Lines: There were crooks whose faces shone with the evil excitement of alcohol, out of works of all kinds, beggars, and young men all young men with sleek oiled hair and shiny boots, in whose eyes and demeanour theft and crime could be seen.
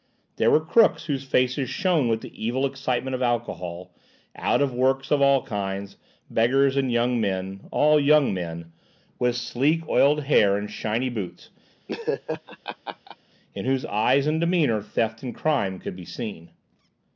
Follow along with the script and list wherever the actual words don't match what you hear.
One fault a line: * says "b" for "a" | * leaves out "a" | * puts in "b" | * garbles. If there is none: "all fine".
all fine